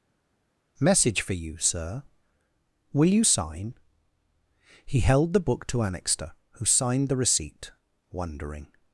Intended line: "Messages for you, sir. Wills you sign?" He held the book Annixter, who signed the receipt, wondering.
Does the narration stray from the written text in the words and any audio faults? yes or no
yes